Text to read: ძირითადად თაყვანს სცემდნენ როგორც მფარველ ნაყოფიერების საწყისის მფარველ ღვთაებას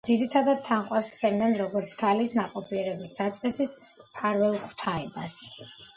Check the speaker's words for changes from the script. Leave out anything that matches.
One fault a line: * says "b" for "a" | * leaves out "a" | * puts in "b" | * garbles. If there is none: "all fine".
* says "ქალის" for "მფარველ"